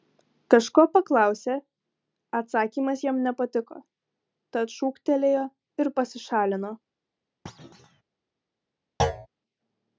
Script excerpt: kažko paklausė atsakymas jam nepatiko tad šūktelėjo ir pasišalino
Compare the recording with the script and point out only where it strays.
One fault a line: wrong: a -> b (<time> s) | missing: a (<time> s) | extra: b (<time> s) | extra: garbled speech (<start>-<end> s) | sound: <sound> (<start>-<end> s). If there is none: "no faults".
sound: thud (7.5-8.0 s)
sound: thud (9.0-9.3 s)